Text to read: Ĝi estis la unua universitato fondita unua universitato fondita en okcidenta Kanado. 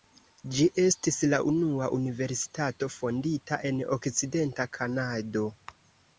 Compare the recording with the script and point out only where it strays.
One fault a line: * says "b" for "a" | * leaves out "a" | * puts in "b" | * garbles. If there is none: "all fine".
* leaves out "unua universitato fondita"